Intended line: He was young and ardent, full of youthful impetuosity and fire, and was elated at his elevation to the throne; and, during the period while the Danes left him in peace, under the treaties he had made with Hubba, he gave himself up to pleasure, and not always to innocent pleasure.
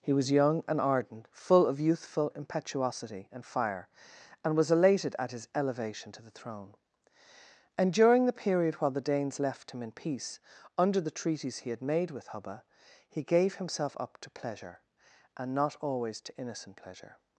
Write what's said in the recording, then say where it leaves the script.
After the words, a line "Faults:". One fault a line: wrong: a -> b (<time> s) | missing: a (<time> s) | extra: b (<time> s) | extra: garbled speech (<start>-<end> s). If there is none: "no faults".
He was young and ardent, full of youthful impetuosity and fire, and was elated at his elevation to the throne; and, during the period while the Danes left him in peace, under the treaties he had made with Hubba, he gave himself up to pleasure, and not always to innocent pleasure.
Faults:
no faults